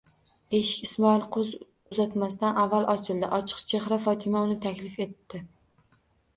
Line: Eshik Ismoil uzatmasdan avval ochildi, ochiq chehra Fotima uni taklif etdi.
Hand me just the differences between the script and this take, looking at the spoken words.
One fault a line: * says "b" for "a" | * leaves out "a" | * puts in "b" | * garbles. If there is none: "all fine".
all fine